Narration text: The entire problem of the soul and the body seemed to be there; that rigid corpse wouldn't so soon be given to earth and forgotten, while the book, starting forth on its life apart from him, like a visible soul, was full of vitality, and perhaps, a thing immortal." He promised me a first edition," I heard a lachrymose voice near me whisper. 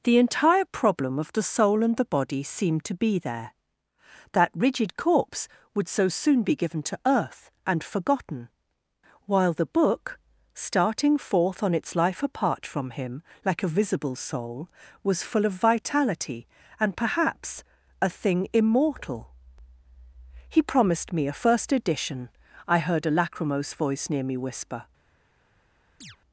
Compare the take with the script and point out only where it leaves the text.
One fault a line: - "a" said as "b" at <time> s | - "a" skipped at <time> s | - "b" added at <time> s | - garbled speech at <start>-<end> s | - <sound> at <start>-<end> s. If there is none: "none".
- "wouldn't" said as "would" at 5.8 s
- chirp at 26.0-26.2 s